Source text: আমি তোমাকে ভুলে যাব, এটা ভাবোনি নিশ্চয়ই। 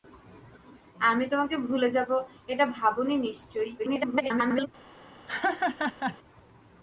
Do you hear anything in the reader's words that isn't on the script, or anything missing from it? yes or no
yes